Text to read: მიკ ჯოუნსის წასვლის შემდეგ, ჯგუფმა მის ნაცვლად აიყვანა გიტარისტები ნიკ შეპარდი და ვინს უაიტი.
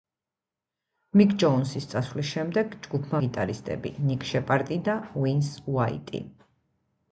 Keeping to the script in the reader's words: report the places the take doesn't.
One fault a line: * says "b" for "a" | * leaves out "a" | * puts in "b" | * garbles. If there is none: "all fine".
* leaves out "მის ნაცვლად აიყვანა"